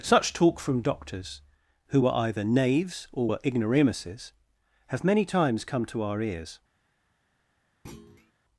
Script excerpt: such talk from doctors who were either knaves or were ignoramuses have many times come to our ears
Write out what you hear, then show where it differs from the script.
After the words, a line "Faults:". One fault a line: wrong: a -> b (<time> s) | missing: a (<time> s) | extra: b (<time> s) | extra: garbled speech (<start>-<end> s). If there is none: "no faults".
such talk from doctors who were either knaves or were ignoramuses have many times come to our ears
Faults:
no faults